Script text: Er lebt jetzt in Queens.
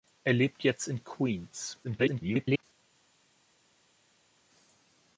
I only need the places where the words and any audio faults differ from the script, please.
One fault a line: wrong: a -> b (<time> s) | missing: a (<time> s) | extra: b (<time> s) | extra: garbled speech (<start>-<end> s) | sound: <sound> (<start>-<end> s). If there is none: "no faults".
extra: garbled speech (1.8-2.6 s)